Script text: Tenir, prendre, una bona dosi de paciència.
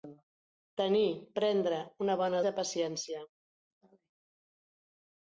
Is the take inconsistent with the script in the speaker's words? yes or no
yes